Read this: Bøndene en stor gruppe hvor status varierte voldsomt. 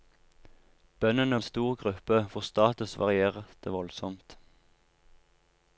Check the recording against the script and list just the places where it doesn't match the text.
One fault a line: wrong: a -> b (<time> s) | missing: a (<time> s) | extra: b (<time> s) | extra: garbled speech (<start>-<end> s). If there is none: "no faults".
no faults